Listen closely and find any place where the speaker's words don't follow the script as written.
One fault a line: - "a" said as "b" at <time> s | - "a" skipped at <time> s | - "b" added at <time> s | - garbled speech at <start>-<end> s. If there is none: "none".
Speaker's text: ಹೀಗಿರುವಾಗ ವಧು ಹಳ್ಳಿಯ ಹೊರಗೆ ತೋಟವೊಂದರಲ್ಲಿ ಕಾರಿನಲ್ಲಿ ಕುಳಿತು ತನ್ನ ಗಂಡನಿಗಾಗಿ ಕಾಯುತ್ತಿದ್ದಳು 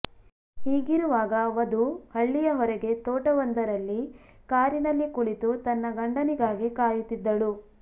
none